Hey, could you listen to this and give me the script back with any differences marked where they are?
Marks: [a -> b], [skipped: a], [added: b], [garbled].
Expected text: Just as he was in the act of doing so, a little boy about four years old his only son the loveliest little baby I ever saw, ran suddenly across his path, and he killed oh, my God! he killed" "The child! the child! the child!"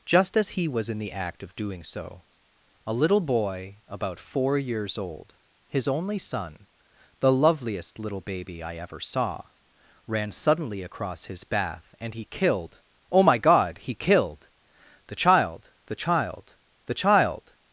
Just as he was in the act of doing so, a little boy about four years old his only son the loveliest little baby I ever saw, ran suddenly across his [path, -> bath] and he killed oh, my God! he killed" "The child! the child! the child!"